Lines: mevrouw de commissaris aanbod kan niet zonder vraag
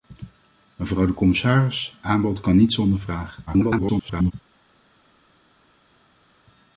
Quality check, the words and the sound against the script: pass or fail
fail